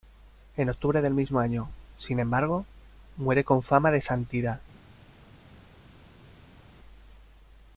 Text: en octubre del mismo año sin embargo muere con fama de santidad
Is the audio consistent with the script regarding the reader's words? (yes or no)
yes